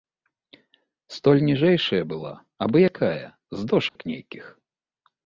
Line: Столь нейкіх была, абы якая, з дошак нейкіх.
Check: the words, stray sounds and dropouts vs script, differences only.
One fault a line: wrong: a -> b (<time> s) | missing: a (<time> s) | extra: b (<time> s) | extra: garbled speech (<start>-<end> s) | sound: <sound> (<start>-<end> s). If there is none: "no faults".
wrong: нейкіх -> ніжэйшая (1.5 s)
sound: dropout (3.9-4.0 s)